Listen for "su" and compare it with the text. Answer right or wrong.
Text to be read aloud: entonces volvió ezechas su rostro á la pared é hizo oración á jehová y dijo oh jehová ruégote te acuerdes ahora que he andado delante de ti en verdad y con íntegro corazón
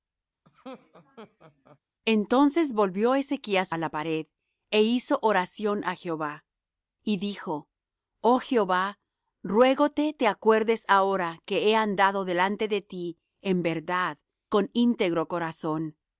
wrong